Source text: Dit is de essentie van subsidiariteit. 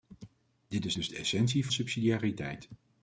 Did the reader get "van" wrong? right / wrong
wrong